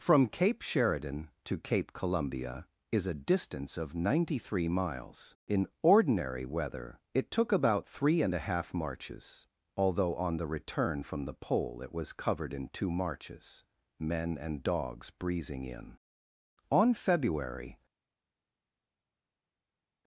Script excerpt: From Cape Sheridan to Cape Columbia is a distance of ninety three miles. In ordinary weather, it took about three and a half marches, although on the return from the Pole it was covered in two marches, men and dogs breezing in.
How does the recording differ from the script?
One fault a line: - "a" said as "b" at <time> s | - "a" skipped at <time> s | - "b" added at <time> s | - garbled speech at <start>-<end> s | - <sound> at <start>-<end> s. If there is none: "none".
- "On February" added at 16.7 s